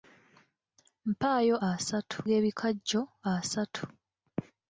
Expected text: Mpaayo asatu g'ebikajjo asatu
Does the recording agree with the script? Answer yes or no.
yes